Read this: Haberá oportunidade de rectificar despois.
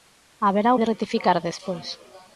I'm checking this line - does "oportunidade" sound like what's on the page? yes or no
no